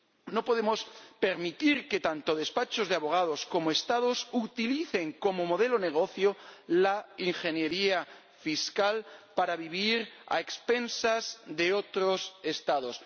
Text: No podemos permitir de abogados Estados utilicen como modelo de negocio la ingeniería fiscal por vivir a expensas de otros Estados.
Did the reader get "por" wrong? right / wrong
wrong